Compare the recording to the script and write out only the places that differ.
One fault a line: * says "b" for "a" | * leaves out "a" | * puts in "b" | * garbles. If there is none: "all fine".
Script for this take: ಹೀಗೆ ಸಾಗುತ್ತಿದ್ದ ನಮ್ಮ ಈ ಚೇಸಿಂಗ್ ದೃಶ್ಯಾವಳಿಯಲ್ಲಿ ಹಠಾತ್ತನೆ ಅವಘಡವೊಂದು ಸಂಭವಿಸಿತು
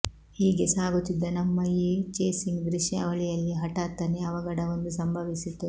all fine